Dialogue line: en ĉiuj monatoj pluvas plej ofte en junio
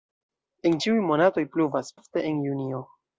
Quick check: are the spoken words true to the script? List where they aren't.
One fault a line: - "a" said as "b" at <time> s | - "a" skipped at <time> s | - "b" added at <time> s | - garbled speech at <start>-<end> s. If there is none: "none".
- "plej" skipped at 1.9 s